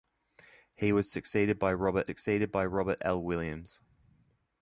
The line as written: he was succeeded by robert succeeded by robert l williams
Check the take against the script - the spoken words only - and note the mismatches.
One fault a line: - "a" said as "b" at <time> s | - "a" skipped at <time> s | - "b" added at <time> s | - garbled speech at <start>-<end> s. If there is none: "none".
none